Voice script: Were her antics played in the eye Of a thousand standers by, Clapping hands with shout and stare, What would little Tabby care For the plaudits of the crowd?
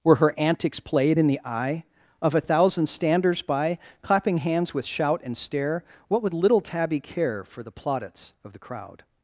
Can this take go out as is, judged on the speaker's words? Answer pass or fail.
pass